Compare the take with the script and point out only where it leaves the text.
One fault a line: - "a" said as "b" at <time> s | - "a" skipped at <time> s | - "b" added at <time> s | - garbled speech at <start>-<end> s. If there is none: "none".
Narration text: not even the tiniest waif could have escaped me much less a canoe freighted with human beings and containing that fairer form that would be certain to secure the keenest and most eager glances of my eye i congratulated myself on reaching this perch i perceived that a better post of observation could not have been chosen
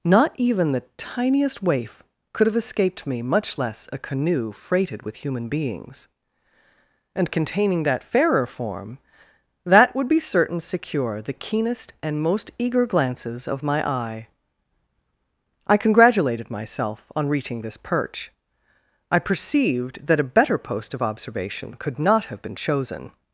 - "to" skipped at 10.6 s